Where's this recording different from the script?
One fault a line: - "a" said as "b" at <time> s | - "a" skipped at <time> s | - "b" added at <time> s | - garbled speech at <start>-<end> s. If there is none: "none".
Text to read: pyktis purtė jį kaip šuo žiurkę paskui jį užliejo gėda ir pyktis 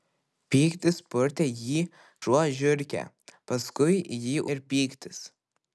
- "kaip" skipped at 1.8 s
- "užliejo gėda" skipped at 4.4 s